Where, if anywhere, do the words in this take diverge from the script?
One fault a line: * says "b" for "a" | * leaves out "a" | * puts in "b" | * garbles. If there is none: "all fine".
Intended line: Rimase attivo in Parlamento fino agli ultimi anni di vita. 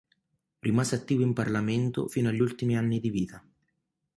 all fine